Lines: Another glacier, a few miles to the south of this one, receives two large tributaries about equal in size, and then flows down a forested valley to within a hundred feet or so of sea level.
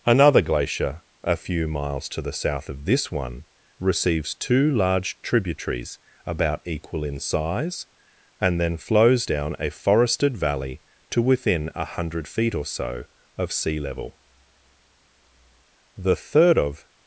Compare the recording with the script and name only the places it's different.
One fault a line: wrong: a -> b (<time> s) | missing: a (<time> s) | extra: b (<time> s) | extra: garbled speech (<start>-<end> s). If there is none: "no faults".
extra: The third of (16.0 s)